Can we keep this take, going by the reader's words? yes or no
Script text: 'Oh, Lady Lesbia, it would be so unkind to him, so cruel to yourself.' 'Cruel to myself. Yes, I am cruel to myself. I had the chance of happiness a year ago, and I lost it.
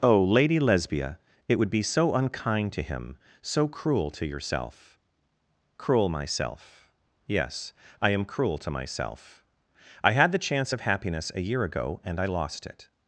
no